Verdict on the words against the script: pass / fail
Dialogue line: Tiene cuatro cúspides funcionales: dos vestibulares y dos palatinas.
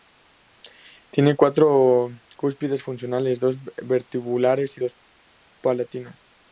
pass